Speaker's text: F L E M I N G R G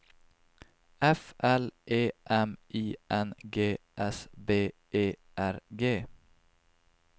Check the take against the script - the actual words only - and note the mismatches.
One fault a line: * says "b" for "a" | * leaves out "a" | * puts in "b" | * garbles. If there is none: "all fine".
* puts in "S B E"